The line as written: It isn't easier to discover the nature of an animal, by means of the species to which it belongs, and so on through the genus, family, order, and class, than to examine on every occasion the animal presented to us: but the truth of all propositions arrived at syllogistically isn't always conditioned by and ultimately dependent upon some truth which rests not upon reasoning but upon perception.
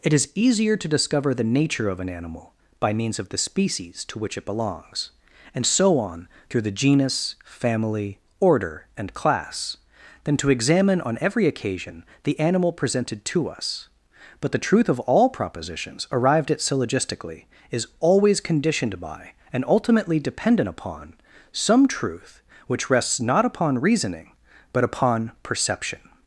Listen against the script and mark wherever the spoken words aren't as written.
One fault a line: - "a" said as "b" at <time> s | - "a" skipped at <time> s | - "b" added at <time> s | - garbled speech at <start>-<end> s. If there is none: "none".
- "isn't" said as "is" at 0.1 s
- "isn't" said as "is" at 17.7 s